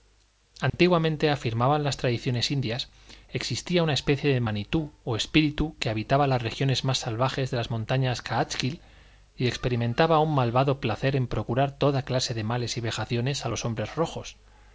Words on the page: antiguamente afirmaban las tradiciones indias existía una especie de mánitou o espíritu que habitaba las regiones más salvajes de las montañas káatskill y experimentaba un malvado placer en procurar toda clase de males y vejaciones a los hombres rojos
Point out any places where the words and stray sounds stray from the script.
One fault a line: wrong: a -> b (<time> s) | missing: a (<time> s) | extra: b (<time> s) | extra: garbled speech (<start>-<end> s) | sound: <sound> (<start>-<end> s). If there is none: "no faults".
sound: dropout (0.7-0.7 s)